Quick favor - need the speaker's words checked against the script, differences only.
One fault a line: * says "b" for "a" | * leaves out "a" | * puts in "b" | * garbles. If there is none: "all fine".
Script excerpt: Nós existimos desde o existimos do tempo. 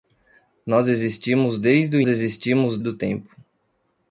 all fine